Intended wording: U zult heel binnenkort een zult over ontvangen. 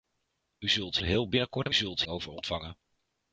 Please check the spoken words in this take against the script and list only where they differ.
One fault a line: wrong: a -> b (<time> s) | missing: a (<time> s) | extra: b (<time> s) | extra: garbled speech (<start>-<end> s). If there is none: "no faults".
no faults